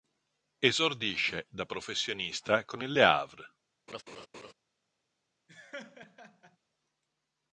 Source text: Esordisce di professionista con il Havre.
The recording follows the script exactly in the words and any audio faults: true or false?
false